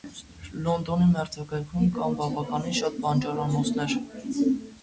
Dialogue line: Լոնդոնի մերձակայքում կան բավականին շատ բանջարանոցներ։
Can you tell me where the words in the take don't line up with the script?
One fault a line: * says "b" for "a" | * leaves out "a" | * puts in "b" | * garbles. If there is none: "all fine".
all fine